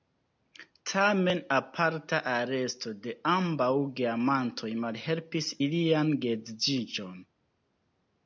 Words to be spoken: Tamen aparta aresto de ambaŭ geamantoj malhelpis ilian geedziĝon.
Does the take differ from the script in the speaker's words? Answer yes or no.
no